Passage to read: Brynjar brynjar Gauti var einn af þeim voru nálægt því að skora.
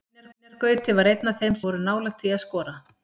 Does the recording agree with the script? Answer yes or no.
yes